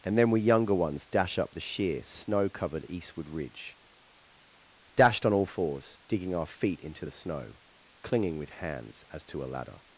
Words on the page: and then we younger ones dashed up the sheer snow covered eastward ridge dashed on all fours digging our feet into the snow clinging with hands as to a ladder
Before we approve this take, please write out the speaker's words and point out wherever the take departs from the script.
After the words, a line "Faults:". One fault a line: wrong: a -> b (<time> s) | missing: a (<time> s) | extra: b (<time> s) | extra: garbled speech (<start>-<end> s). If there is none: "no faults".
and then we younger ones dash up the sheer snow covered eastward ridge dashed on all fours digging our feet into the snow clinging with hands as to a ladder
Faults:
wrong: dashed -> dash (1.1 s)